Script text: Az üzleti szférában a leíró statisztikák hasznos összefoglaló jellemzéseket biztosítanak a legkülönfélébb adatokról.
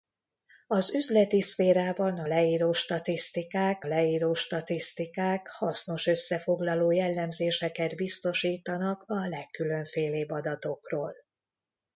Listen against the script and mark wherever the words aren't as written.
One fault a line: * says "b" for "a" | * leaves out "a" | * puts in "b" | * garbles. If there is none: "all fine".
* puts in "leíró statisztikák"